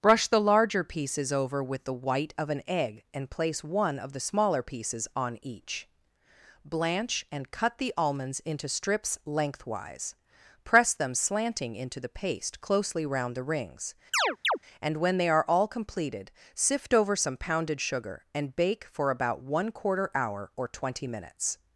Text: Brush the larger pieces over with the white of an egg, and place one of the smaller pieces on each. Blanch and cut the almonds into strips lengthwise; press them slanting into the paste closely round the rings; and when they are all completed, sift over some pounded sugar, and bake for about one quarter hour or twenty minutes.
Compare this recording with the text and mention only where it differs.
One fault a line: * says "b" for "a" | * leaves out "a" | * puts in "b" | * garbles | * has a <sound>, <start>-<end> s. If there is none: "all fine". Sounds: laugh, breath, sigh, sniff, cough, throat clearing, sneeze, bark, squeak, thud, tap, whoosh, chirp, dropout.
* has a chirp, 14.1-14.6 s